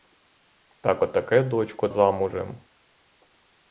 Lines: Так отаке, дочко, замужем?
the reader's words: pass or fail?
pass